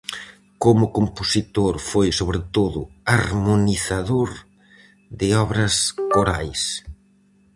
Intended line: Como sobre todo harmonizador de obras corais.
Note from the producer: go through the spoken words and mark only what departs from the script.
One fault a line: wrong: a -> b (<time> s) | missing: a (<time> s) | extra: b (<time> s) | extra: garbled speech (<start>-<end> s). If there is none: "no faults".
extra: compositor foi (1.0 s)